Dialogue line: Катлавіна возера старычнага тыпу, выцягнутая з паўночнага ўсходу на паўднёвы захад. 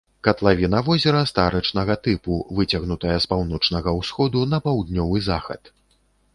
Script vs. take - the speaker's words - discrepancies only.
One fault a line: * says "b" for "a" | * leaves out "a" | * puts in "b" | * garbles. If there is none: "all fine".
all fine